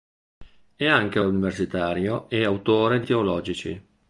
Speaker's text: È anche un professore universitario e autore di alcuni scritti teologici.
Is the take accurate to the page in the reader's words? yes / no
no